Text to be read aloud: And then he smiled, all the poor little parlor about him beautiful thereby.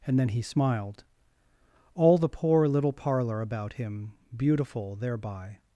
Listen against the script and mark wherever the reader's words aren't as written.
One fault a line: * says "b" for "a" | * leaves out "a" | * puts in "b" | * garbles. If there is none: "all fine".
all fine